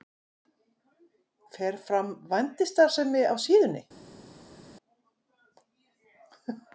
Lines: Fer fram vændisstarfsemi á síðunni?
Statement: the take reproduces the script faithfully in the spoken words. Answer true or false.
true